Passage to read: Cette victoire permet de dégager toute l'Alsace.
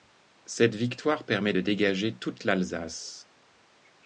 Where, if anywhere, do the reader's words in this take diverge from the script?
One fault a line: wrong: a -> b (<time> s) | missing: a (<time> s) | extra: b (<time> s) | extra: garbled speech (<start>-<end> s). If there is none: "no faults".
no faults